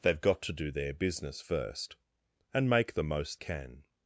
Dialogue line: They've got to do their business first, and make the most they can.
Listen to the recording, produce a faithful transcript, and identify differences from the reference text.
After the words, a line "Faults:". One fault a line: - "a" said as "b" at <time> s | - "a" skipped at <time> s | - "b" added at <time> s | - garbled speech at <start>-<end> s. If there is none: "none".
They've got to do their business first, and make the most can.
Faults:
- "they" skipped at 3.4 s